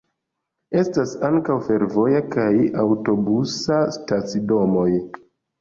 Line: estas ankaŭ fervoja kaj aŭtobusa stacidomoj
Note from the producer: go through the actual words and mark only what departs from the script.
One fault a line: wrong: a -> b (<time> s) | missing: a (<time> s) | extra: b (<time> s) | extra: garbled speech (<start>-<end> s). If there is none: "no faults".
no faults